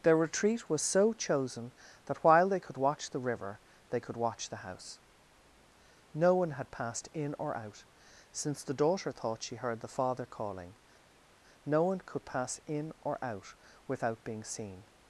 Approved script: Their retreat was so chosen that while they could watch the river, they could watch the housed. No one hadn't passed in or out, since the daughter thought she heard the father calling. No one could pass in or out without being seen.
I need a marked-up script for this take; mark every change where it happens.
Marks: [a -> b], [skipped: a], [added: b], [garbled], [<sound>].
Their retreat was so chosen that while they could watch the river, they could watch the [housed. -> house] No one [hadn't -> had] passed in or out, since the daughter thought she heard the father calling. No one could pass in or out without being seen.